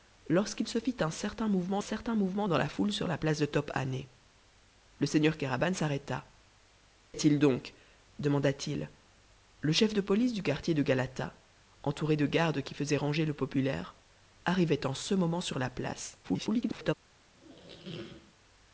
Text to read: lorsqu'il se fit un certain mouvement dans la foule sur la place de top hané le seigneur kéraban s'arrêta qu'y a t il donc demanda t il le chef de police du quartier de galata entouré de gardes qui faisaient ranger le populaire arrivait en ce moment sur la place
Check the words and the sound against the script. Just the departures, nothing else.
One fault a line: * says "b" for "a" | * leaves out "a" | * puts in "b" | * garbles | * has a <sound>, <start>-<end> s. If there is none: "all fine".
* puts in "certain mouvement"
* leaves out "qu'y"
* garbles
* has a squeak, 17.3-18.3 s